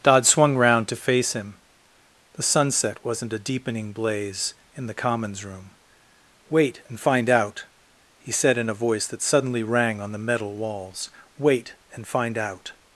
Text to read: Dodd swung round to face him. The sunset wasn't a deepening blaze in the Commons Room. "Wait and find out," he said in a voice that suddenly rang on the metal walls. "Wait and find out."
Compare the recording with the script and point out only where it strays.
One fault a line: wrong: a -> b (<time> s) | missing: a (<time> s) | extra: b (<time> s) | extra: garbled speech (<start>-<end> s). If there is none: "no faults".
no faults